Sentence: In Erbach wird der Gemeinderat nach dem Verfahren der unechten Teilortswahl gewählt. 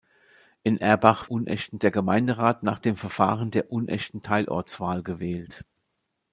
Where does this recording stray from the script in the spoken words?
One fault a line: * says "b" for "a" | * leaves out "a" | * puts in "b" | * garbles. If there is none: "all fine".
* says "unechten" for "wird"